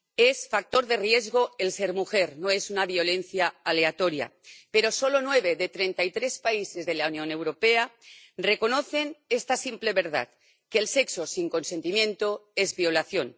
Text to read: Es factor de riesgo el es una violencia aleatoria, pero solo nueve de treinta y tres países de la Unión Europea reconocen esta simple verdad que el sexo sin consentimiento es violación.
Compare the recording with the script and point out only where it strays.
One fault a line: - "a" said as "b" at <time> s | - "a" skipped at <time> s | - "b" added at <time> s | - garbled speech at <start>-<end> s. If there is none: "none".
- "ser mujer no" added at 1.7 s